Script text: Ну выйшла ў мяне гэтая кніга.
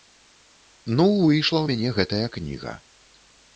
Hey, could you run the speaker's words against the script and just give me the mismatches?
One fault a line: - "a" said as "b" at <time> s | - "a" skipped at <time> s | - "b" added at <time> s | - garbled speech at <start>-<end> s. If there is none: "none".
none